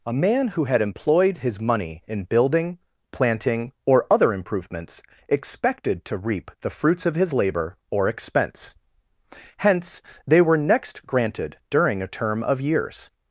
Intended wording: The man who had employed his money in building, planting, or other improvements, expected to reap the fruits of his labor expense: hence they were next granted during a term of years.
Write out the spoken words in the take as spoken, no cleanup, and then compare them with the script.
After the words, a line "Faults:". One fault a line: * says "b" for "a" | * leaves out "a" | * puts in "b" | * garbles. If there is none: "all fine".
A man who had employed his money in building, planting, or other improvements, expected to reap the fruits of his labor or expense: hence they were next granted during a term of years.
Faults:
* says "A" for "The"
* puts in "or"